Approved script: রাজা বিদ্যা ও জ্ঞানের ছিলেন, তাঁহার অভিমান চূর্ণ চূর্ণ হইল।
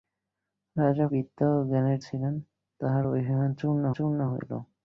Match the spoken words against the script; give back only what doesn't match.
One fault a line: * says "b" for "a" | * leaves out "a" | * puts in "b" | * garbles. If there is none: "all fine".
all fine